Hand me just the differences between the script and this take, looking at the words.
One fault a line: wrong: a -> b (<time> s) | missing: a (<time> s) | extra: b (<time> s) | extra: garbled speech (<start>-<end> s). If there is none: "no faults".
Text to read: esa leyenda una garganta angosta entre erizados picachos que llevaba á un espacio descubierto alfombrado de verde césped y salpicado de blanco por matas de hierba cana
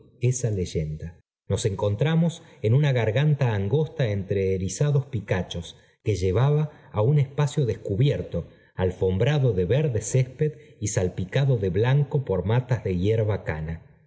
extra: nos encontramos en (1.5 s)